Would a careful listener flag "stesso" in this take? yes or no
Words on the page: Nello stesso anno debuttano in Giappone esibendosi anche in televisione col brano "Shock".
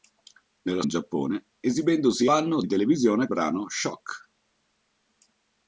yes